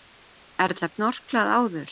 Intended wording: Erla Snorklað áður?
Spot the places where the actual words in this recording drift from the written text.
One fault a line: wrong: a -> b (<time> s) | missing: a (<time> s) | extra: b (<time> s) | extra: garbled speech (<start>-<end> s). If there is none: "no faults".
no faults